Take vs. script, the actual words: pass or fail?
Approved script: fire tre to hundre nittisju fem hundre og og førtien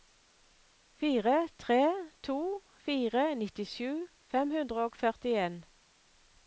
fail